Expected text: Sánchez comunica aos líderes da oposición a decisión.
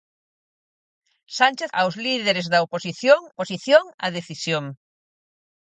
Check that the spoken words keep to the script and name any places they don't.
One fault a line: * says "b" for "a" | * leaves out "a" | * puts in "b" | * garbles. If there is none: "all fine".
* leaves out "comunica"
* puts in "oposición"